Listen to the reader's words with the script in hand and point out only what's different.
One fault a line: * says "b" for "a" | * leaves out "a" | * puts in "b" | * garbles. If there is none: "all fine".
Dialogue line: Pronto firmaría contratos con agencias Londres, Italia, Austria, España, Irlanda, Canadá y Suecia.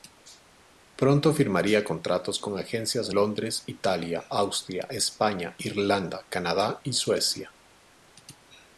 all fine